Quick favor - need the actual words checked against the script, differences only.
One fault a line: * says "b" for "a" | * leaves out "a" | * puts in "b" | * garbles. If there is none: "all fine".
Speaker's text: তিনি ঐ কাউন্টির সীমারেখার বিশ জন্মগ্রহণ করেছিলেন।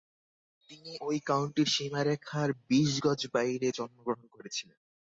* puts in "গজ বাইরে"